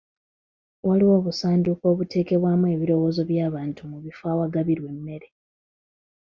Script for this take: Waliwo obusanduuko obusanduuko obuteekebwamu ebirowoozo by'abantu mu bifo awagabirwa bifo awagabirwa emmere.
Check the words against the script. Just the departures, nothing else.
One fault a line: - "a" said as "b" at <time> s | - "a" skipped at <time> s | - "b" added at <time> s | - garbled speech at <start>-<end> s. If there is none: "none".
- "obusanduuko" skipped at 1.8 s
- "bifo awagabirwa" skipped at 4.9 s